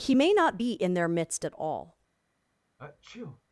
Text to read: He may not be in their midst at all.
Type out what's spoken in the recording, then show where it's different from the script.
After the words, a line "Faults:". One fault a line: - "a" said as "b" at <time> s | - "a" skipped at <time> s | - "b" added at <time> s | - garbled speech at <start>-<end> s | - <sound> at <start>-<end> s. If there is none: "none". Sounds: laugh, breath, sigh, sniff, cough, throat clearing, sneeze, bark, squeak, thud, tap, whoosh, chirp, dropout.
He may not be in their midst at all.
Faults:
- sneeze at 2.8-3.4 s